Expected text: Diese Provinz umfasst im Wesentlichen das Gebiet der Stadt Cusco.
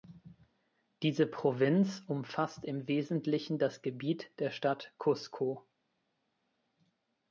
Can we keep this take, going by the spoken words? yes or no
yes